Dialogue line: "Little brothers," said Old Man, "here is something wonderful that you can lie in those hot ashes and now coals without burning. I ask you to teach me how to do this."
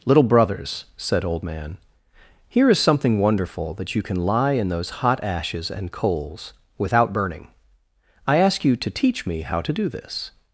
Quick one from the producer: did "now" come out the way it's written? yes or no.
no